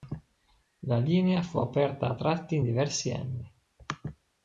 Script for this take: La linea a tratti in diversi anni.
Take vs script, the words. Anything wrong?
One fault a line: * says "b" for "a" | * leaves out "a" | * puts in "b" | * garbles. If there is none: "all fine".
* puts in "fu aperta"